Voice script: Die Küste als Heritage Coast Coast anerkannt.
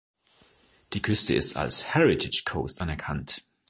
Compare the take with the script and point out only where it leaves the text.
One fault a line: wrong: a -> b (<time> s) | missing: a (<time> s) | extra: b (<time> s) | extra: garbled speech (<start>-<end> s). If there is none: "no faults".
extra: ist (1.3 s)
missing: Coast (2.8 s)